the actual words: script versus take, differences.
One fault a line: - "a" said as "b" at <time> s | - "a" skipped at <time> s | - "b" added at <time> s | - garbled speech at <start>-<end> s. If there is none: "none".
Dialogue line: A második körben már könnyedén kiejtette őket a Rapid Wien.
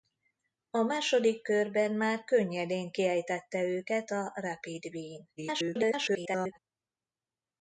- garbled speech at 5.4-6.6 s